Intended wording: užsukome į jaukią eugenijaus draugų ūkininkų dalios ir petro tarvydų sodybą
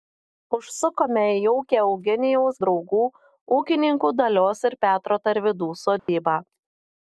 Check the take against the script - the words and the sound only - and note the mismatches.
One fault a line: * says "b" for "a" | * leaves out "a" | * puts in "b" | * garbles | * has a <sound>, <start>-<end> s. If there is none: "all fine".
* has a dropout, 6.0-6.1 s